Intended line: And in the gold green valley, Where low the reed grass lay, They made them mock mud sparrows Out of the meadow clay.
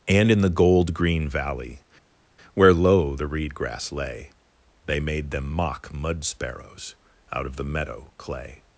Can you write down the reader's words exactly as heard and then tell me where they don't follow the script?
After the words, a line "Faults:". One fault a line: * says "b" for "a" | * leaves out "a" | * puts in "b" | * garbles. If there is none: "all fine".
And in the gold green valley, Where low the reed grass lay, They made them mock mud sparrows Out of the meadow clay.
Faults:
all fine